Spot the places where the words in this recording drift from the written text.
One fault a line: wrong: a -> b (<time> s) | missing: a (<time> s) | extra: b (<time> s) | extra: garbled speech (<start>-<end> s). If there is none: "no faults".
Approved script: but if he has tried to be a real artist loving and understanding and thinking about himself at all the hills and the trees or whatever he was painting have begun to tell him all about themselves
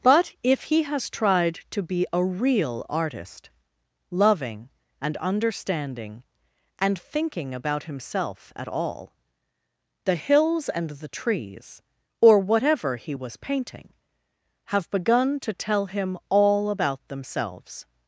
no faults